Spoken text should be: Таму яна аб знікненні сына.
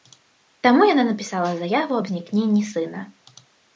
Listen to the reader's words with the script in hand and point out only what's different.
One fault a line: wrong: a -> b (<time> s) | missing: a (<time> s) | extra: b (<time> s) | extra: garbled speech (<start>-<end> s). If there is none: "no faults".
extra: напісала заяву (1.1 s)